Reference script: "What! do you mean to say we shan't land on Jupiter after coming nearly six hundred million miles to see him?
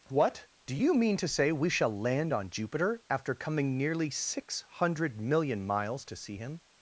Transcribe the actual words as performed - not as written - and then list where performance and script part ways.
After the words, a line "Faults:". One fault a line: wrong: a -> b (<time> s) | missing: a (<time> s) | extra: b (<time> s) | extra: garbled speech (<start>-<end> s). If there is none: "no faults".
"What! do you mean to say we shall land on Jupiter after coming nearly six hundred million miles to see him?
Faults:
wrong: shan't -> shall (1.7 s)